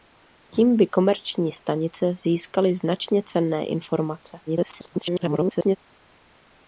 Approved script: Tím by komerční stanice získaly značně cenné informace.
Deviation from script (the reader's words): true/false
true